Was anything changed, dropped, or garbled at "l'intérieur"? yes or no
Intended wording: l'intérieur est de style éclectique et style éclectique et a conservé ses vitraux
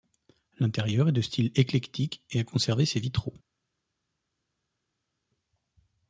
no